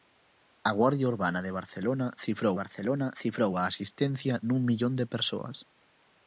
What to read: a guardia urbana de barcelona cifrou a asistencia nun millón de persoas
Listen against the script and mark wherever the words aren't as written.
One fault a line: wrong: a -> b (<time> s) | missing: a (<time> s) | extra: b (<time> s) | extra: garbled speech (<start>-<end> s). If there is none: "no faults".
extra: barcelona cifrou (2.6 s)